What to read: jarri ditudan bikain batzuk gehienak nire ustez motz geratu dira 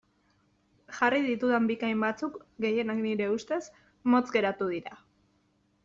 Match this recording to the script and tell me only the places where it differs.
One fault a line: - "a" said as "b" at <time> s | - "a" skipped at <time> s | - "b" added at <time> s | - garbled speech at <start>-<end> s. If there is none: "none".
none